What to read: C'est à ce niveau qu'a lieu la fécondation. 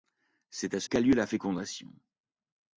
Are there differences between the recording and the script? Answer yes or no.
yes